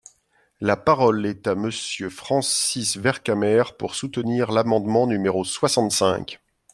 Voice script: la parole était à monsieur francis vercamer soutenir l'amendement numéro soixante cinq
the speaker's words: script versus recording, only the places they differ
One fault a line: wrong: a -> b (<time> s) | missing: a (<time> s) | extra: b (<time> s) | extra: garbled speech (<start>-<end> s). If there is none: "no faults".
wrong: était -> est (1.3 s)
extra: pour (3.8 s)